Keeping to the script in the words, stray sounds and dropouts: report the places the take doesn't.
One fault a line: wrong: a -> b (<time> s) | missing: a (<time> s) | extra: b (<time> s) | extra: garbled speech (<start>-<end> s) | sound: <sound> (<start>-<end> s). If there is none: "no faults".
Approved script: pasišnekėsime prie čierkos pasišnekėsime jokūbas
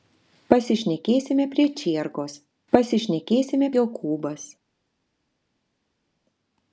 no faults